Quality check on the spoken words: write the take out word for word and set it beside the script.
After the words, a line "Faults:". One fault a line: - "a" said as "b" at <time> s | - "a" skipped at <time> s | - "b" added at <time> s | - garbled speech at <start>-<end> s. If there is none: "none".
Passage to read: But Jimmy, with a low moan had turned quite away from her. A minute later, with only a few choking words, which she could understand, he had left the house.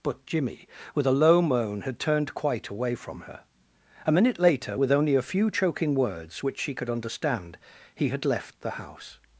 But Jimmy, with a low moan had turned quite away from her. A minute later, with only a few choking words, which she could understand, he had left the house.
Faults:
none